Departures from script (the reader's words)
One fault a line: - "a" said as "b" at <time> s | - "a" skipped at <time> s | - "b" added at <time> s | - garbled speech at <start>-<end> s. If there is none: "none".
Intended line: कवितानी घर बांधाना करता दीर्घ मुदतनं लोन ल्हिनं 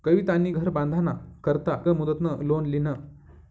- "दीर्घ" skipped at 1.7 s